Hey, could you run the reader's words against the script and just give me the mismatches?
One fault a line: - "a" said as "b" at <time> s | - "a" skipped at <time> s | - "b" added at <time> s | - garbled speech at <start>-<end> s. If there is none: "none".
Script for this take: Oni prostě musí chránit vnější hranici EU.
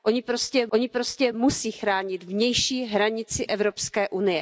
- "oni prostě" added at 0.7 s